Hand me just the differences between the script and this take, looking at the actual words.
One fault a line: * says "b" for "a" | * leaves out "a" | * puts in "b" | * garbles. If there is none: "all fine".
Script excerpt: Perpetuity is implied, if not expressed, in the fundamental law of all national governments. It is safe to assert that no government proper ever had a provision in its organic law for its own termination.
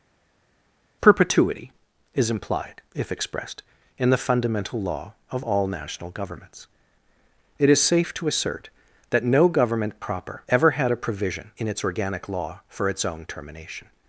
* leaves out "not"